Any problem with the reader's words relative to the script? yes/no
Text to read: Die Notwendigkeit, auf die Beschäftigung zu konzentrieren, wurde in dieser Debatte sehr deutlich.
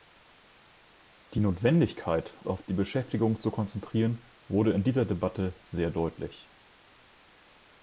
no